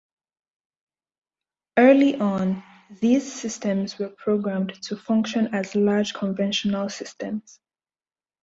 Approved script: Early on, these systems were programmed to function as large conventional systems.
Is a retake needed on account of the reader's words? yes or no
no